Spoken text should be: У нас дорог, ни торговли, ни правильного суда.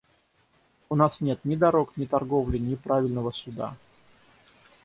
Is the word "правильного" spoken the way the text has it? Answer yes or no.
yes